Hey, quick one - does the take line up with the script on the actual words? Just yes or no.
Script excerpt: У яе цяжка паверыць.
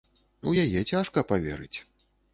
yes